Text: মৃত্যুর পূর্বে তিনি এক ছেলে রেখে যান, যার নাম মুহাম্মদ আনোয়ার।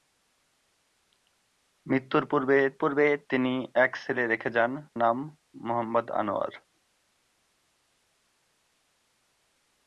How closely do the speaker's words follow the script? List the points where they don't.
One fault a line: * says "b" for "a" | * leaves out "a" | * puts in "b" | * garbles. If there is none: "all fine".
* puts in "পূর্বে"
* leaves out "যার"